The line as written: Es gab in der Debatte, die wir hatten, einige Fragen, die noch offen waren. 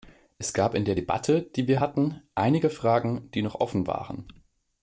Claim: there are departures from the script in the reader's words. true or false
false